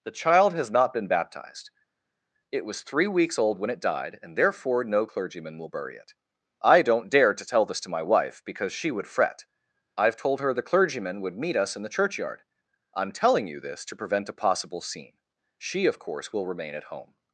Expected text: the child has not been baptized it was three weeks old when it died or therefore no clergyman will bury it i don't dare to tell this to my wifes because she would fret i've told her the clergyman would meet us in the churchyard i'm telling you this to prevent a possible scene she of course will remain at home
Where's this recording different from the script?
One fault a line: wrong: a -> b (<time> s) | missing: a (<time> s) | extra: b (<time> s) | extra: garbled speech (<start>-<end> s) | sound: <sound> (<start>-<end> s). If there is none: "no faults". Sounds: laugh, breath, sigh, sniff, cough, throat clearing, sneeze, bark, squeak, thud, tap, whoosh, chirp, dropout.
wrong: or -> and (4.2 s)
wrong: wifes -> wife (8.0 s)